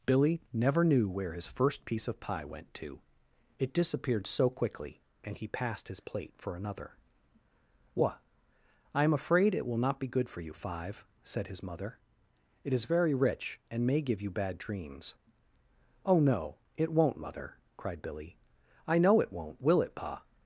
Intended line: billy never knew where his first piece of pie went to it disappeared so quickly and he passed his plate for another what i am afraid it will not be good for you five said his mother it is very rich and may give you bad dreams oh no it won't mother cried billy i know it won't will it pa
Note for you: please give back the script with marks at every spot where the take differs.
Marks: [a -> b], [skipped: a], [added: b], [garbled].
billy never knew where his first piece of pie went to it disappeared so quickly and he passed his plate for another what i am afraid it will not be good for you five said his mother it is very rich and may give you bad dreams oh no it won't mother cried billy i know it won't will it pa